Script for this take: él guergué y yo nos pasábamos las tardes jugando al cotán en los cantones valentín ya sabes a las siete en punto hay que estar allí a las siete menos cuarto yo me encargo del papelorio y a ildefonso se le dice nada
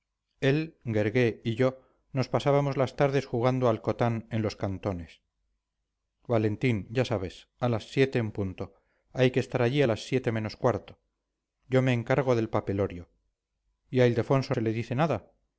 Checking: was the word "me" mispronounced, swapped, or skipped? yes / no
no